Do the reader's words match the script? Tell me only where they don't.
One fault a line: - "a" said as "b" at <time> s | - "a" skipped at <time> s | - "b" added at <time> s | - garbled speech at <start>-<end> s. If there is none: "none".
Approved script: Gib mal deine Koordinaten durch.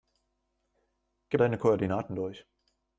- "mal" skipped at 1.4 s